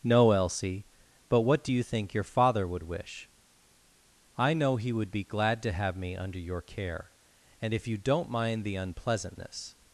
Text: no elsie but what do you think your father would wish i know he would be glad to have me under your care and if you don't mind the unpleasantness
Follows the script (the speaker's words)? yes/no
yes